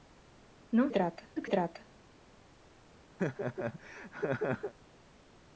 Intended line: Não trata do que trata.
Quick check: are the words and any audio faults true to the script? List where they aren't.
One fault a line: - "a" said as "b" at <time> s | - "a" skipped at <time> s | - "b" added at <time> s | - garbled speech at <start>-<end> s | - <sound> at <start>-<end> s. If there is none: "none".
- laugh at 3.2-4.7 s